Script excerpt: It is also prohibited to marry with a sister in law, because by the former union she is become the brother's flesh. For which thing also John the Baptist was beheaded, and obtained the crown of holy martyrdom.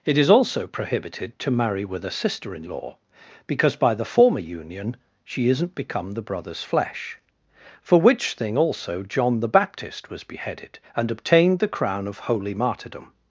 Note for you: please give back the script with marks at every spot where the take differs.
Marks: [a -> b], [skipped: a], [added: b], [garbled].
It is also prohibited to marry with a sister in law, because by the former union she [is -> isn't] become the brother's flesh. For which thing also John the Baptist was beheaded, and obtained the crown of holy martyrdom.